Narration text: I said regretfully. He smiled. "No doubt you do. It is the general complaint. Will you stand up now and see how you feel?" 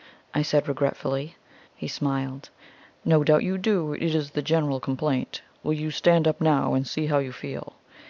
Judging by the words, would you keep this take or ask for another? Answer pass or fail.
pass